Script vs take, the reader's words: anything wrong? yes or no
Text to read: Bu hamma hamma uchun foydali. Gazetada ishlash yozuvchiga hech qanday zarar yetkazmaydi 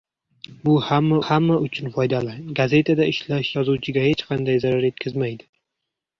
no